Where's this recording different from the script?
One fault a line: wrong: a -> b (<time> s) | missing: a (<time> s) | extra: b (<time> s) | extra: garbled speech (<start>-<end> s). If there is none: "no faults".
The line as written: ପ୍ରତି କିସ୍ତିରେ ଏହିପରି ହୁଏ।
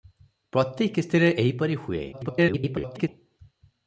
extra: garbled speech (2.1-3.1 s)